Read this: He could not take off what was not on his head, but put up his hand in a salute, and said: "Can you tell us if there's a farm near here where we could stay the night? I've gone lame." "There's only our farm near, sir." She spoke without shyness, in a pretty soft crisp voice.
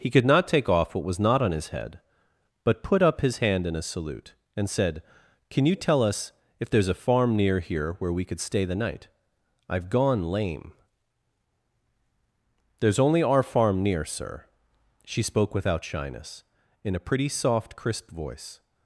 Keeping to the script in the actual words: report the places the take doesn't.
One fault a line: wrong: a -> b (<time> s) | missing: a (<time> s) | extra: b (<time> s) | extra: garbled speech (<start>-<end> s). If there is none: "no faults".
no faults